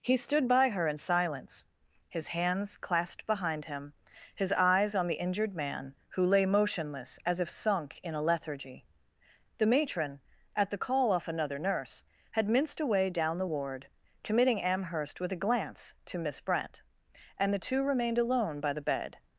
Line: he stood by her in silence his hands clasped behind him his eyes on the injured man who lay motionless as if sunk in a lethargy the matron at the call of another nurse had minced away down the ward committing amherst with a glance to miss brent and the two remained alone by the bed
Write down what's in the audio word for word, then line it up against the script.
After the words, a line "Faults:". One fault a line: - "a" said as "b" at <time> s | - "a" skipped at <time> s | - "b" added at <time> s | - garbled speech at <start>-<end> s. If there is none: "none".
he stood by her in silence his hands clasped behind him his eyes on the injured man who lay motionless as if sunk in a lethargy the matron at the call off another nurse had minced away down the ward committing amherst with a glance to miss brent and the two remained alone by the bed
Faults:
- "of" said as "off" at 11.1 s